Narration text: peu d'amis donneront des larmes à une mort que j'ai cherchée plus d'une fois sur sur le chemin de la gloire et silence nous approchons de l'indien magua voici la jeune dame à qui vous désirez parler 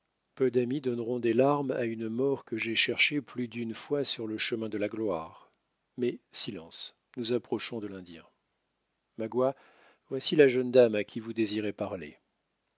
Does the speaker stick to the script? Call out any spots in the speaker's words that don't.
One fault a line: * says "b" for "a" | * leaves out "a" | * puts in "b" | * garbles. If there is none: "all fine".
* leaves out "sur"
* says "mais" for "et"